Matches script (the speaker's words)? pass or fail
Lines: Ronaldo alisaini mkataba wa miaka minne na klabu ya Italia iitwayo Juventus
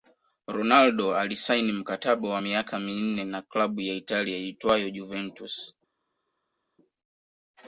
pass